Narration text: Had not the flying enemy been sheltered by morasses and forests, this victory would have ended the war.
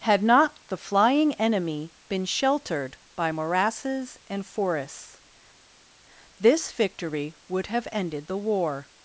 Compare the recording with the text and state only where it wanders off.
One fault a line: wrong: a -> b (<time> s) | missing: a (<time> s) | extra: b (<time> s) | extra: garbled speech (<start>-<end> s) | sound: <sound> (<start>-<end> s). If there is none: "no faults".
no faults